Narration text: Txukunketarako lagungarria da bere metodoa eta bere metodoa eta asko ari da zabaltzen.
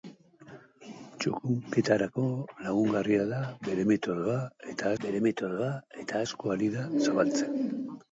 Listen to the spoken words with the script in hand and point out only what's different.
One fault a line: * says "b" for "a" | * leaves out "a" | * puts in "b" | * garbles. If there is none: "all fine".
all fine